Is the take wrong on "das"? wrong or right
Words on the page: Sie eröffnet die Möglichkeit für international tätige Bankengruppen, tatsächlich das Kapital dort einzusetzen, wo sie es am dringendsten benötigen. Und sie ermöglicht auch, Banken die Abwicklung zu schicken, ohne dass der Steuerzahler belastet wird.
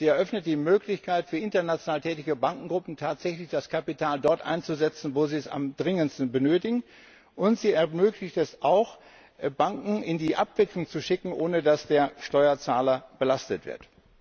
right